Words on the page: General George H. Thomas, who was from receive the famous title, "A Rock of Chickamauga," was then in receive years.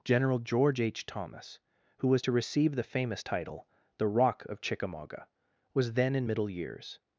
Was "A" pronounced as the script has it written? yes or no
no